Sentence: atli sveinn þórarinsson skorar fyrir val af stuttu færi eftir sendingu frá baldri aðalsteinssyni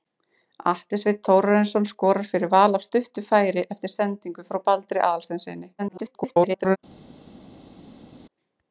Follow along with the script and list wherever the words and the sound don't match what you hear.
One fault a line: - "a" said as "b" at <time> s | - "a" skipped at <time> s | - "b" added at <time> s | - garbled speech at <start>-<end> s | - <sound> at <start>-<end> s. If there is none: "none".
- garbled speech at 5.8-6.8 s